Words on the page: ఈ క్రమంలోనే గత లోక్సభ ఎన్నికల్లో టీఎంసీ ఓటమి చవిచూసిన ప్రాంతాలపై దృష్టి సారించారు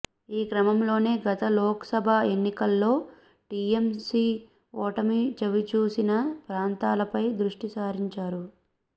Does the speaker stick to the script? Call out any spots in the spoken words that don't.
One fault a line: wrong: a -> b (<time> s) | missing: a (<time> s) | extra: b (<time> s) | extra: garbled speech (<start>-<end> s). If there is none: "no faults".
no faults